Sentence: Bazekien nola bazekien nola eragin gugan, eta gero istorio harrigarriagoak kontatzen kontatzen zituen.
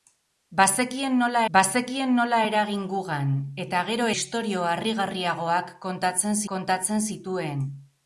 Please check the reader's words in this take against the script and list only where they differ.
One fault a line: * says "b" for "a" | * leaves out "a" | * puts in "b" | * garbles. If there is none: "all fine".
all fine